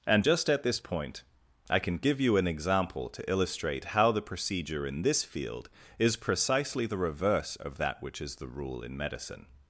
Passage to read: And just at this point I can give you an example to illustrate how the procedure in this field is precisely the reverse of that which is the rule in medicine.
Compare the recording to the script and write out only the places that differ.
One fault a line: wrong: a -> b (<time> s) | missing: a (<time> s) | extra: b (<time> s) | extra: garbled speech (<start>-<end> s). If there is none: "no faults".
no faults